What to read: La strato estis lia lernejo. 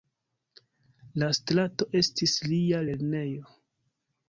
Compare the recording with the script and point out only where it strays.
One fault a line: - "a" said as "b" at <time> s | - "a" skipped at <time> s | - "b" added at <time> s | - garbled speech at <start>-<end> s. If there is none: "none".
none